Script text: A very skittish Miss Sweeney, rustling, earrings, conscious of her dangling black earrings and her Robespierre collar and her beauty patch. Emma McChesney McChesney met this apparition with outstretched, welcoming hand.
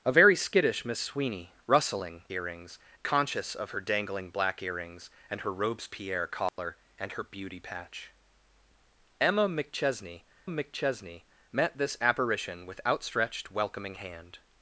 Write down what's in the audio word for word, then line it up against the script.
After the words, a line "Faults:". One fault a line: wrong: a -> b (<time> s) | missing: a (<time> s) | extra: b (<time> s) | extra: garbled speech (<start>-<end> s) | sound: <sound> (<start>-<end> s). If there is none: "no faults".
A very skittish Miss Sweeney, rustling, earrings, conscious of her dangling black earrings and her Robespierre collar and her beauty patch. Emma McChesney McChesney met this apparition with outstretched, welcoming hand.
Faults:
sound: dropout (6.5-6.6 s)